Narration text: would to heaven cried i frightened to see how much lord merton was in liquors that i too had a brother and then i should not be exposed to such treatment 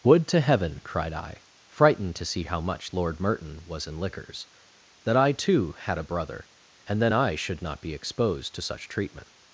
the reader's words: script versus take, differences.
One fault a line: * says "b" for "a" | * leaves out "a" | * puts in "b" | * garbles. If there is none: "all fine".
all fine